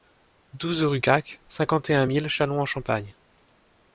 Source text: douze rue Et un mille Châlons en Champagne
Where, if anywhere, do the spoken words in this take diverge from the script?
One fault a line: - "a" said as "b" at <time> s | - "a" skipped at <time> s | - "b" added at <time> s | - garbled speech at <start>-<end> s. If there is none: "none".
- "Caque cinquante" added at 1.0 s